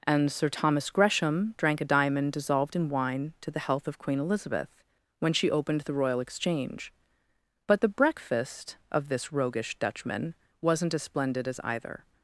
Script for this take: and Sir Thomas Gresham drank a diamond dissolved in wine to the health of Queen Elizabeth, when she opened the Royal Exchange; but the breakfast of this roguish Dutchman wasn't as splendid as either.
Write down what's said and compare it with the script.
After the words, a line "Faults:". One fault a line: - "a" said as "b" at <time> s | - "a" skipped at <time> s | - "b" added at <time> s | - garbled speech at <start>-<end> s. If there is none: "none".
and Sir Thomas Gresham drank a diamond dissolved in wine to the health of Queen Elizabeth, when she opened the Royal Exchange; but the breakfast of this roguish Dutchman wasn't as splendid as either.
Faults:
none